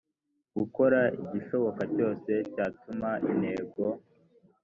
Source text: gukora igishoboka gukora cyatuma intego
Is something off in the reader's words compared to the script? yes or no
yes